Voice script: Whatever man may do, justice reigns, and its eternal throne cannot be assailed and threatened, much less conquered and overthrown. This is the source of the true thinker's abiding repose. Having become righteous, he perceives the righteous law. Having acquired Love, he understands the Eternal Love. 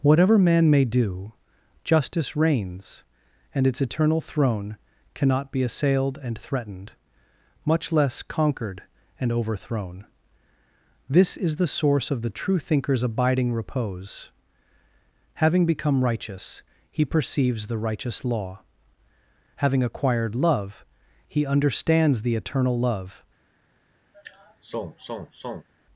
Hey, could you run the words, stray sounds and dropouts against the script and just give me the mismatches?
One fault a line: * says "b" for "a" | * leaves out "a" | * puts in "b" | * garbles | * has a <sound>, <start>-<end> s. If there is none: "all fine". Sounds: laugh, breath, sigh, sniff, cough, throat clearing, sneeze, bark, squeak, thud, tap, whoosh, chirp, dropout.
* has a sigh, 24.1-25.7 s